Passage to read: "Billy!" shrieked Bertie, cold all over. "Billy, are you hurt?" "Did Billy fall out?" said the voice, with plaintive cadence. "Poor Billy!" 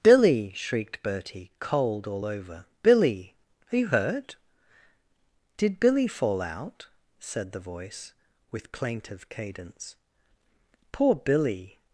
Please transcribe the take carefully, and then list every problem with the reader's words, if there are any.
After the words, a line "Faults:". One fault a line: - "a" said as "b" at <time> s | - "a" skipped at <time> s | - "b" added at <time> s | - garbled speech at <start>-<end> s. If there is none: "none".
"Billy!" shrieked Bertie, cold all over. "Billy, are you hurt?" "Did Billy fall out?" said the voice, with plaintive cadence. "Poor Billy!"
Faults:
none